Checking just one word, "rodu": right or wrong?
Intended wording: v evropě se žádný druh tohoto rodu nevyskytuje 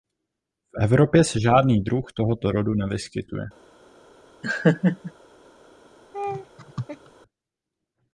right